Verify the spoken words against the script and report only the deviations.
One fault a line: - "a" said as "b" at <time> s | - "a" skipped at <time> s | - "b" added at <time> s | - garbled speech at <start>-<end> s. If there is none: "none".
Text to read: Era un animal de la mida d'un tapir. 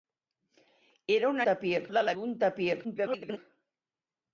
- "animal" said as "tapir" at 1.5 s
- "mida" skipped at 2.1 s
- garbled speech at 2.8-3.4 s